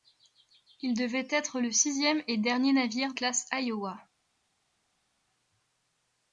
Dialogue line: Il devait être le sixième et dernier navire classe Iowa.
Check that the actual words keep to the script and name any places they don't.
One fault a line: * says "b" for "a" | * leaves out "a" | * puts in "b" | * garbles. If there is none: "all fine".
all fine